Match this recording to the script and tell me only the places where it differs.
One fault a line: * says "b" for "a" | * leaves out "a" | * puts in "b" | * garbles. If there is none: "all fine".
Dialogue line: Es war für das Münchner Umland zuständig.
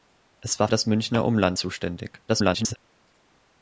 * leaves out "für"
* garbles